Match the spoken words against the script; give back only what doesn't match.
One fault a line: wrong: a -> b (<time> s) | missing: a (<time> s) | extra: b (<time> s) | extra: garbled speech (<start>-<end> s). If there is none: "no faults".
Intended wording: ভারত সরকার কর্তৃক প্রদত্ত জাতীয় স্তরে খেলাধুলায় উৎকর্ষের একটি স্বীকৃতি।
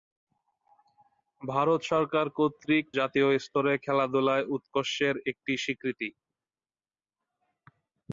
missing: প্রদত্ত (2.9 s)